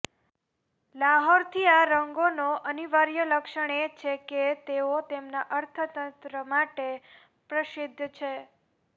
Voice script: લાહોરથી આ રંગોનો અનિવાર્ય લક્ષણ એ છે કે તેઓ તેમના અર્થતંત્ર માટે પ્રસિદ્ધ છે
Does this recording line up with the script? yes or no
yes